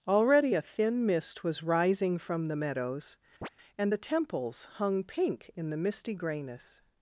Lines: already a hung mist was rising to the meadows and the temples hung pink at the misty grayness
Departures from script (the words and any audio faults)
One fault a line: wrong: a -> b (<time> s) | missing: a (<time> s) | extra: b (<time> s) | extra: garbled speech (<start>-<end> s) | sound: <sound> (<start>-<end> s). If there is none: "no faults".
wrong: hung -> thin (0.6 s)
wrong: to -> from (2.2 s)
sound: chirp (3.4-3.5 s)
wrong: at -> in (5.5 s)